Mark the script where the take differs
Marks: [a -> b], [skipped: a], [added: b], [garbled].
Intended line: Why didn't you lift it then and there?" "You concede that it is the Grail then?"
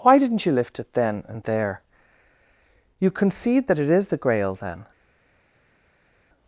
Why didn't you lift it then and there?" "You concede that it is the Grail then?"